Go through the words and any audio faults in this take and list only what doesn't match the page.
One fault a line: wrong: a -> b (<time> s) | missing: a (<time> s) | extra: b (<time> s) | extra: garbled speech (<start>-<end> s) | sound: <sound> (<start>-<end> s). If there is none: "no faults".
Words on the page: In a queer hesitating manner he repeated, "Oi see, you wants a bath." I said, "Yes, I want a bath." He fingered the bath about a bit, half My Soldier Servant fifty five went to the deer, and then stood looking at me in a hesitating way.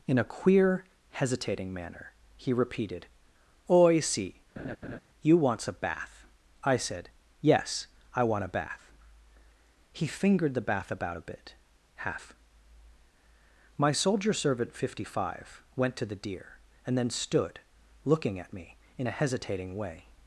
sound: laugh (4.6-5.0 s)